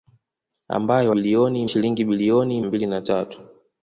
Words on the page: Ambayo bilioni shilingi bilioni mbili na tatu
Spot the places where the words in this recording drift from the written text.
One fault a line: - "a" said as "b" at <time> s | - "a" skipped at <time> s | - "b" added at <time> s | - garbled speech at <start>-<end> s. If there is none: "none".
none